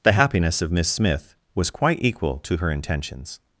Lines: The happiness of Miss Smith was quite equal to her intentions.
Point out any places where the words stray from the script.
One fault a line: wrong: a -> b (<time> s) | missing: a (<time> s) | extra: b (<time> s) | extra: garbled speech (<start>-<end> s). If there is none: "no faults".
no faults